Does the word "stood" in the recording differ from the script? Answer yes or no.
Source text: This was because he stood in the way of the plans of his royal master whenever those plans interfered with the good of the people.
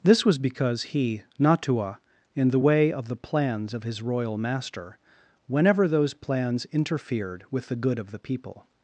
yes